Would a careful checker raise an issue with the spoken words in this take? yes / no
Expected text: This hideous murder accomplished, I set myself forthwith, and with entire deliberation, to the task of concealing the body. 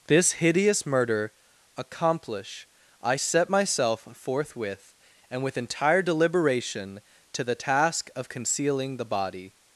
yes